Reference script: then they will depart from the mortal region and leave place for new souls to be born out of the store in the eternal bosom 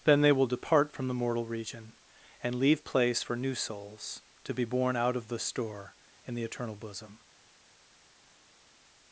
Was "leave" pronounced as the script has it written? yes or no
yes